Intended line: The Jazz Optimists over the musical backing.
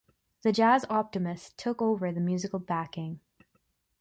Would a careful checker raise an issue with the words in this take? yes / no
yes